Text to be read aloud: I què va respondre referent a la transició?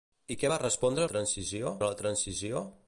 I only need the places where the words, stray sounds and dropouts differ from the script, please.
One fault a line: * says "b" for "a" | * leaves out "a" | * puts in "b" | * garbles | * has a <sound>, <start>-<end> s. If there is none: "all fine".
* says "transició" for "referent"